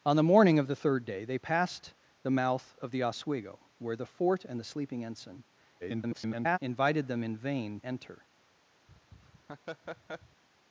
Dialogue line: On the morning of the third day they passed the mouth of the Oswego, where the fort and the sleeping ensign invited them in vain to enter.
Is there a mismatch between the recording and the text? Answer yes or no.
yes